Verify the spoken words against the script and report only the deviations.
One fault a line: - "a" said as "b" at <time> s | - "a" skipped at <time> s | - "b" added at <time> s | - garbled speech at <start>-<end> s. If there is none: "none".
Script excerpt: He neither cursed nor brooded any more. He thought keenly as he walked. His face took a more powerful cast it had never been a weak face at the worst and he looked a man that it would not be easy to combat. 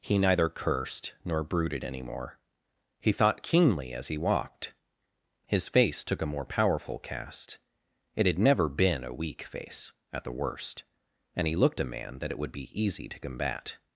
- "not" skipped at 12.5 s